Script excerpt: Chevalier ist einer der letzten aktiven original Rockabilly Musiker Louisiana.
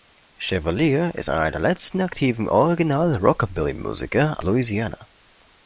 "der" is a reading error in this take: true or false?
false